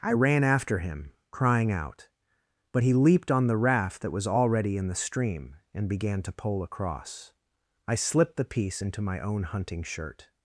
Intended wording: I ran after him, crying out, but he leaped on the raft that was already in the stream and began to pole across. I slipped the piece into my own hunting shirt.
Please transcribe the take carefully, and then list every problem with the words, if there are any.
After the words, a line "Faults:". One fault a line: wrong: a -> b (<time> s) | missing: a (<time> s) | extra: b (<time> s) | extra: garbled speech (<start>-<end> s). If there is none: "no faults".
I ran after him, crying out, but he leaped on the raft that was already in the stream and began to pole across. I slipped the piece into my own hunting shirt.
Faults:
no faults